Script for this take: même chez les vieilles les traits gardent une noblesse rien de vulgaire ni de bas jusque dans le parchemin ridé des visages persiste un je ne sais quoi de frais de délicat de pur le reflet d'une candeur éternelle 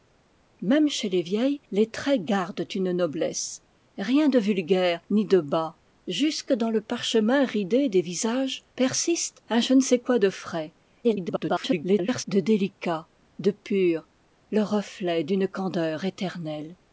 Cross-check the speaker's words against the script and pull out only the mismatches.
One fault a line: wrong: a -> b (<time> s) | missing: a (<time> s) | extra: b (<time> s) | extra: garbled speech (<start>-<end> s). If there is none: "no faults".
extra: garbled speech (11.0-12.2 s)